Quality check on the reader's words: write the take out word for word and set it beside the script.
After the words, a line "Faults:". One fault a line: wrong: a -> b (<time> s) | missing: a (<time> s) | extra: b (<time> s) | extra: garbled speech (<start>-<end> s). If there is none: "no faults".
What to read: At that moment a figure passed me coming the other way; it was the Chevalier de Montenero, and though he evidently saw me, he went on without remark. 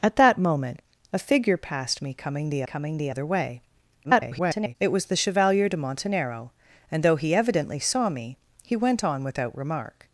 At that moment a figure passed me coming the coming the other way; [garbled] it was the Chevalier de Montenero, and though he evidently saw me, he went on without remark.
Faults:
extra: coming the (2.6 s)
extra: garbled speech (4.0-4.8 s)